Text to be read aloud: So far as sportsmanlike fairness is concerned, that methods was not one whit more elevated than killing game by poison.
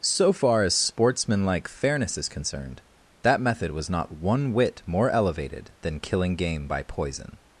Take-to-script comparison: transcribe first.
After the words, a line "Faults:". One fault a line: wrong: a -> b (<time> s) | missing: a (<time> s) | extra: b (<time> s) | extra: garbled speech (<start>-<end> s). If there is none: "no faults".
So far as sportsmanlike fairness is concerned, that method was not one whit more elevated than killing game by poison.
Faults:
wrong: methods -> method (3.4 s)